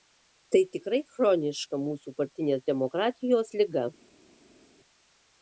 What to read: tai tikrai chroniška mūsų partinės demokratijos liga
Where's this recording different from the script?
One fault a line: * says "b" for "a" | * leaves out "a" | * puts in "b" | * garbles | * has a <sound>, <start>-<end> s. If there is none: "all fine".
all fine